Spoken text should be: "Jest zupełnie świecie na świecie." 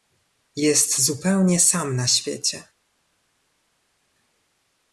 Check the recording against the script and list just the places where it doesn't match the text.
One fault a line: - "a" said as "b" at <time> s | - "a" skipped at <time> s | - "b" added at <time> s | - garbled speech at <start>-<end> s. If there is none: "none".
- "świecie" said as "sam" at 1.6 s